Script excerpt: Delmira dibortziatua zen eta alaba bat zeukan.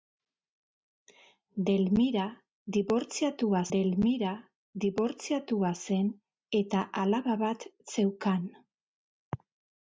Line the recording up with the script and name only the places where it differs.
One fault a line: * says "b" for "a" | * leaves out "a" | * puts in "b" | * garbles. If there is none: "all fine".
* puts in "delmira dibortziatua"